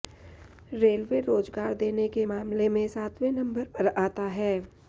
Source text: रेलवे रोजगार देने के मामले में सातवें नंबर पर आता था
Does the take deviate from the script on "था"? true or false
true